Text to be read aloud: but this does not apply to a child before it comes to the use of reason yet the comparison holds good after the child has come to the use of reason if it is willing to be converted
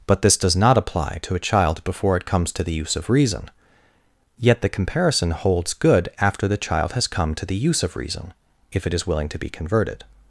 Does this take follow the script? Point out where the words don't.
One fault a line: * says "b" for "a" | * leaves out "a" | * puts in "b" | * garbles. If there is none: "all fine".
all fine